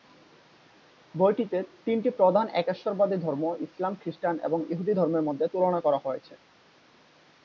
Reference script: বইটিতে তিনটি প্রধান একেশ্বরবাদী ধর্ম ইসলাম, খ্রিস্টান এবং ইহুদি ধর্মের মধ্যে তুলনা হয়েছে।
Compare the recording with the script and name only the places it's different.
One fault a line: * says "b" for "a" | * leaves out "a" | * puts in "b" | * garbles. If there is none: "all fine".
* puts in "করা"